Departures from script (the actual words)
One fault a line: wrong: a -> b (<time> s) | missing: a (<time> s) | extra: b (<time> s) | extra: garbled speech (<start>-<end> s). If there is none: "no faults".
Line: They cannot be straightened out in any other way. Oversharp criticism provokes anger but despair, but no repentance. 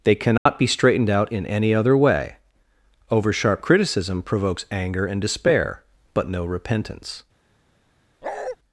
wrong: but -> and (5.0 s)